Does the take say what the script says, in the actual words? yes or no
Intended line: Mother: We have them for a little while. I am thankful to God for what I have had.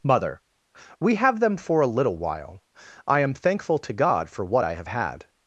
yes